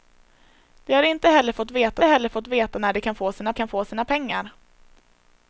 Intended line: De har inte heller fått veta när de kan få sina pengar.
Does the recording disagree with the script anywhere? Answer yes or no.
yes